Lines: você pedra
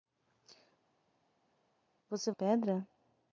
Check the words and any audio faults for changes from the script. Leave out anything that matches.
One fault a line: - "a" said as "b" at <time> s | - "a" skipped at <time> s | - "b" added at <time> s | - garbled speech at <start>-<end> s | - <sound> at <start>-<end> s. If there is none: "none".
none